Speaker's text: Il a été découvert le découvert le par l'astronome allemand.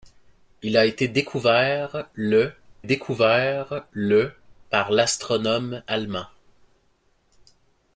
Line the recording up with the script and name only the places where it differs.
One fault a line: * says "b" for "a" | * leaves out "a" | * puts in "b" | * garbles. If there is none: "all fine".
all fine